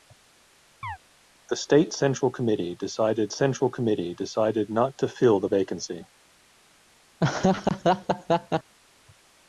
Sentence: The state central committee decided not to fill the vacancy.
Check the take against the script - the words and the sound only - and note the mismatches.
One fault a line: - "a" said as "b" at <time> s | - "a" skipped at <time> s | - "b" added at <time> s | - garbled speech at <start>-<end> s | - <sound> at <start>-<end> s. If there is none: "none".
- chirp at 0.8-1.0 s
- "central committee decided" added at 3.3 s
- laugh at 7.2-8.7 s